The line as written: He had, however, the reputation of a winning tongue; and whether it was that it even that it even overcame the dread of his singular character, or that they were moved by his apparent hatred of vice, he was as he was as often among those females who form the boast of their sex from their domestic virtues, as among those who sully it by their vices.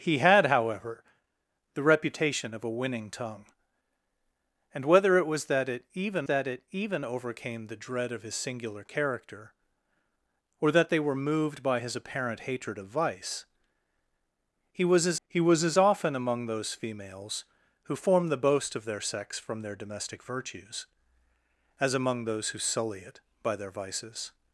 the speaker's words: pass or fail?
pass